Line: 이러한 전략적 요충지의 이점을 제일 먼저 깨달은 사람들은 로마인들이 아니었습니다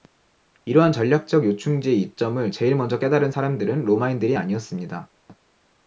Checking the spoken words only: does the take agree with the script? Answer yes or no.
yes